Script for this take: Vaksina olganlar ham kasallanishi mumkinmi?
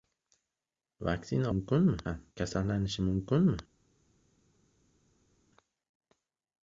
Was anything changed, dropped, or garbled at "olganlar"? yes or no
yes